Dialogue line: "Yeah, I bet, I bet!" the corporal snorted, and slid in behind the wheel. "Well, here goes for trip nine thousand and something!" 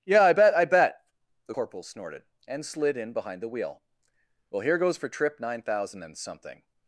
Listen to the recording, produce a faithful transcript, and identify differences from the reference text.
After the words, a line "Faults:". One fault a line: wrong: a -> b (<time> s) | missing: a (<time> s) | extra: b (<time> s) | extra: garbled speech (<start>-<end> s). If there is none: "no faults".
"Yeah, I bet, I bet!" the corporal snorted, and slid in behind the wheel. "Well, here goes for trip nine thousand and something!"
Faults:
no faults